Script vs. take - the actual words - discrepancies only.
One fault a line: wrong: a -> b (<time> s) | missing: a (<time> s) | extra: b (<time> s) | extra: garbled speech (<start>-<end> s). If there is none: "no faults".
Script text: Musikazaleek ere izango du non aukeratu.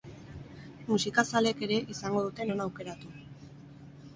wrong: du -> dute (2.3 s)